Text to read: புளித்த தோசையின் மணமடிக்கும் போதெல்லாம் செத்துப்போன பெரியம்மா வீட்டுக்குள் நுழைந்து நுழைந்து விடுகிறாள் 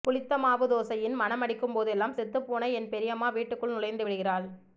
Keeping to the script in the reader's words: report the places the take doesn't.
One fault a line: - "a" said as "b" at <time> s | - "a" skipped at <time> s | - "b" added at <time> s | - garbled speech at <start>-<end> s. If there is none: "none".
- "மாவு" added at 0.4 s
- "என்" added at 2.7 s
- "நுழைந்து" skipped at 4.0 s